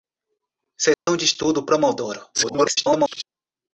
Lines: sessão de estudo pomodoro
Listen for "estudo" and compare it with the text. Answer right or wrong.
right